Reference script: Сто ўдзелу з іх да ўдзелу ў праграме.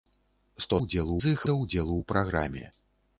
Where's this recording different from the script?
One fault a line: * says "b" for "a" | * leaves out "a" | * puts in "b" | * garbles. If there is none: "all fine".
all fine